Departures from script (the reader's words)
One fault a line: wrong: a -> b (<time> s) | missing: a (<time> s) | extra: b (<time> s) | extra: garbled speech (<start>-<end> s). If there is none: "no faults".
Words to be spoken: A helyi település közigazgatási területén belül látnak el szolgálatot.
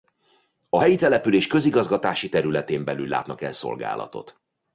no faults